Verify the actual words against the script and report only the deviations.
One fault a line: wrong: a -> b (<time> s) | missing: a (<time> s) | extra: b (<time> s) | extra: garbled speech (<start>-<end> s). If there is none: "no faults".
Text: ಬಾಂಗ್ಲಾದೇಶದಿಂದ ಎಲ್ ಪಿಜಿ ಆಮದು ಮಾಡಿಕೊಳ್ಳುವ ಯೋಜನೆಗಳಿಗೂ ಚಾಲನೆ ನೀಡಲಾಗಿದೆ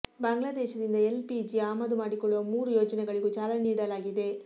extra: ಮೂರು (2.5 s)